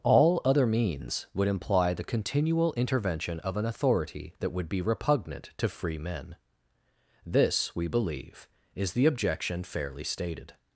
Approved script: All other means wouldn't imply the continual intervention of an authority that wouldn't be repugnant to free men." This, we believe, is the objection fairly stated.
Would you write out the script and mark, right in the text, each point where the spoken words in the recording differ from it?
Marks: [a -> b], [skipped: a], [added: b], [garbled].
All other means [wouldn't -> would] imply the continual intervention of an authority that [wouldn't -> would] be repugnant to free men." This, we believe, is the objection fairly stated.